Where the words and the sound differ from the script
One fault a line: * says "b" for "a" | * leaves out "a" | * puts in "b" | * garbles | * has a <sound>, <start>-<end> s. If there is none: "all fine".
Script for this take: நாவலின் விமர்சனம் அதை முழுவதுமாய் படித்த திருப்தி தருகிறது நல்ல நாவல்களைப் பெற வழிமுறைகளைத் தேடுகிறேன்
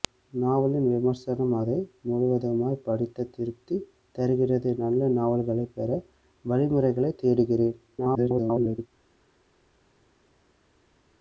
* garbles